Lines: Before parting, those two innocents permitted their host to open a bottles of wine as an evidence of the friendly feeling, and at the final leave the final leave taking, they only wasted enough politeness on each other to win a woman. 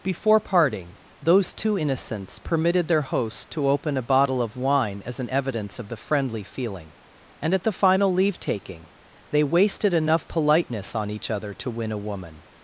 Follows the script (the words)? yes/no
no